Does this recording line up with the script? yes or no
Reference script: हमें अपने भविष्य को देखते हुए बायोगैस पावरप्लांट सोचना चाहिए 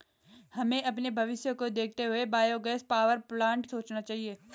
yes